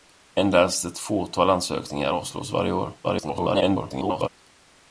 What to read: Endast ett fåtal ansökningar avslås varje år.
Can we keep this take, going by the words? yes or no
no